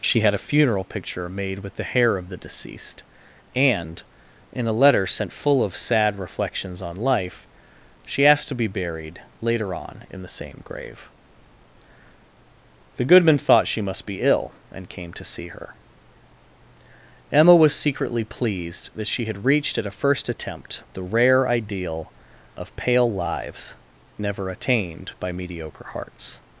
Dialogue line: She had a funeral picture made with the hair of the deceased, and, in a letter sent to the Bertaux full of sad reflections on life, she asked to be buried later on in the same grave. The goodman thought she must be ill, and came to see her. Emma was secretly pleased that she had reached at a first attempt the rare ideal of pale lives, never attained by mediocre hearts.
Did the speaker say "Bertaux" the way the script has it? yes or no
no